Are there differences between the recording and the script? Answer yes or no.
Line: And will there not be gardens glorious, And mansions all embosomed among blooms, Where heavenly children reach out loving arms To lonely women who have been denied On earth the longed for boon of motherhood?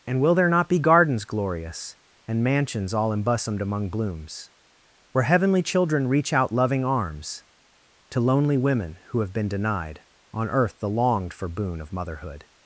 no